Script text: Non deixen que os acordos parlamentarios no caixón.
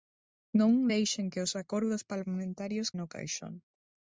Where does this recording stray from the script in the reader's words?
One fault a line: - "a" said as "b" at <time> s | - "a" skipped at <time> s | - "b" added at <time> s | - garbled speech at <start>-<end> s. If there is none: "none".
none